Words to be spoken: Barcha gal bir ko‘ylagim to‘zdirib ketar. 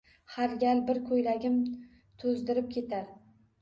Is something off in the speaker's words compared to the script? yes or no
yes